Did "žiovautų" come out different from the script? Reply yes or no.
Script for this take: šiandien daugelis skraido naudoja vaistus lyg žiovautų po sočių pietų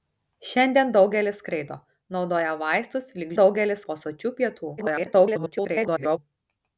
yes